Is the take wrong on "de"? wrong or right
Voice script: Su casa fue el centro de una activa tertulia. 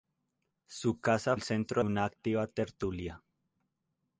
wrong